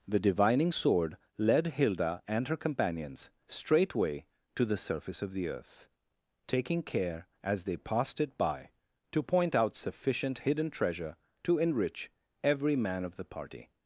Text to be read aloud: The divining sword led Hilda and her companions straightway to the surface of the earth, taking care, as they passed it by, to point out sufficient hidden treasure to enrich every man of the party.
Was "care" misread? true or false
false